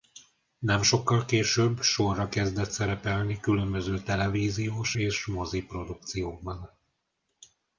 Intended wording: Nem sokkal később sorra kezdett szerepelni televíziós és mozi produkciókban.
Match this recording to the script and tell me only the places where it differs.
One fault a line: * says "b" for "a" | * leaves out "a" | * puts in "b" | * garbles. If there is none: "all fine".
* puts in "különböző"